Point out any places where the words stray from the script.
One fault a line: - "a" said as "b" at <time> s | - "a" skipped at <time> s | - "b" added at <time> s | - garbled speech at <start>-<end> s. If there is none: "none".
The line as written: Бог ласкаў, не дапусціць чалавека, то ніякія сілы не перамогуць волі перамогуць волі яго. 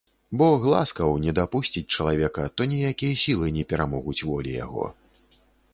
- "перамогуць волі" skipped at 4.5 s